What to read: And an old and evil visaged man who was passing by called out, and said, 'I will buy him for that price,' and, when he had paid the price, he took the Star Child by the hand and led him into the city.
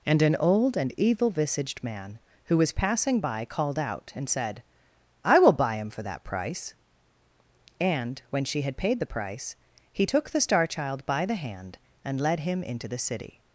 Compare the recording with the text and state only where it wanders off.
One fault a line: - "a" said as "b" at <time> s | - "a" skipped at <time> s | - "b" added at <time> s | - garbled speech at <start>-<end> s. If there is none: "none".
- "he" said as "she" at 8.4 s